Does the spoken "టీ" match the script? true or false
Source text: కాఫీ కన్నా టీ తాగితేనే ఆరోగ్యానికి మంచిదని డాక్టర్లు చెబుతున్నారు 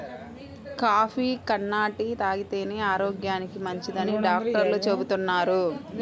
true